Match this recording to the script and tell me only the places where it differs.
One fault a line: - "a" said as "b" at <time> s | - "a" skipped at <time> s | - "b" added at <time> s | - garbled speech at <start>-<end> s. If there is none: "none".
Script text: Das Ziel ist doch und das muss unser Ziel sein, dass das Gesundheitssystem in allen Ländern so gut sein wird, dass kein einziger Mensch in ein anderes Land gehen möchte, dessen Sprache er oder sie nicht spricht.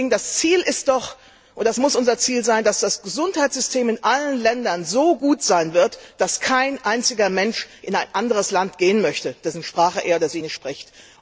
none